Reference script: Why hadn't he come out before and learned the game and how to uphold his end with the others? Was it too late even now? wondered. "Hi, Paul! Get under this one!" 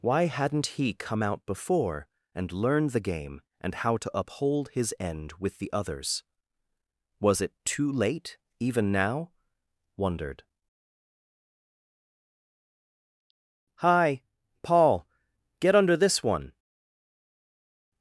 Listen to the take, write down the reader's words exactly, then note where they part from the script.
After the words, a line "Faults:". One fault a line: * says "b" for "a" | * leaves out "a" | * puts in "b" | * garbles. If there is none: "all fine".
Why hadn't he come out before and learned the game and how to uphold his end with the others? Was it too late even now? wondered. "Hi, Paul! Get under this one!"
Faults:
all fine